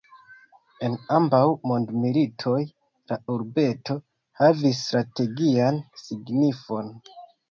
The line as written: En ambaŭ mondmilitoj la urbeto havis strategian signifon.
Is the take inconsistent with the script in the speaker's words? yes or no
no